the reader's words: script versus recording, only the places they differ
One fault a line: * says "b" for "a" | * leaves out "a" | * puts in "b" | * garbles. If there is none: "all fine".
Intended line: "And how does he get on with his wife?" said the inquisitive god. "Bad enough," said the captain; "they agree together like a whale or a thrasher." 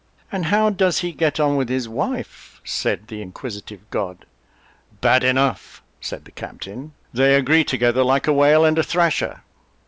* says "and" for "or"